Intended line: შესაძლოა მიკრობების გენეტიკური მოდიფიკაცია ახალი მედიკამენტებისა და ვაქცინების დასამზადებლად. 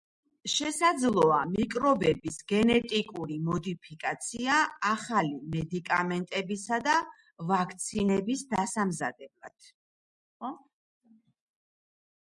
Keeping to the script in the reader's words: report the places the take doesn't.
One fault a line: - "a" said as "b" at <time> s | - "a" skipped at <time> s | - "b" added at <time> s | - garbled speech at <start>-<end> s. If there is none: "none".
none